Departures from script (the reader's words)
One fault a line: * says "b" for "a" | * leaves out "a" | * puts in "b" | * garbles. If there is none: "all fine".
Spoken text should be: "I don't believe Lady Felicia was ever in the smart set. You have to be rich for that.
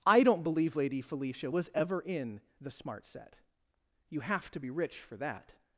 all fine